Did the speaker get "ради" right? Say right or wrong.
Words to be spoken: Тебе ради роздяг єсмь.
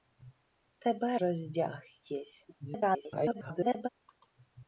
wrong